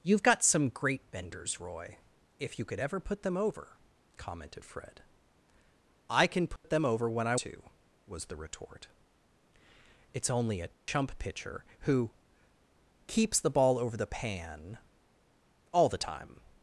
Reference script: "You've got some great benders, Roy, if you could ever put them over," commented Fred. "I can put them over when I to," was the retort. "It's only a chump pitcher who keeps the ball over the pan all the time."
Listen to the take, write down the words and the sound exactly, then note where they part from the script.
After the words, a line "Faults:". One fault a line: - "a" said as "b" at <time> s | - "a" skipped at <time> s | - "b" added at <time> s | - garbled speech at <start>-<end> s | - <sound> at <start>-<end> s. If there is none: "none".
"You've got some great benders, Roy, if you could ever put them over," commented Fred. "I can put them over when I to," was the retort. "It's only a chump pitcher who keeps the ball over the pan all the time."
Faults:
- dropout at 6.6-6.6 s
- dropout at 10.7-10.9 s